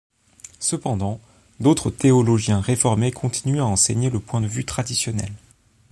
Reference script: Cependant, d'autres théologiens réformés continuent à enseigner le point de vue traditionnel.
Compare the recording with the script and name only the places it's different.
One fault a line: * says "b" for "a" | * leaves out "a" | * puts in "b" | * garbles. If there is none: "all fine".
all fine